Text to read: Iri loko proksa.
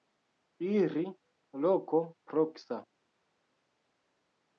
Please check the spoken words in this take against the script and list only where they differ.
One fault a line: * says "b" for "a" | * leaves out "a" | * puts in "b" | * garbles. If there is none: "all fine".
all fine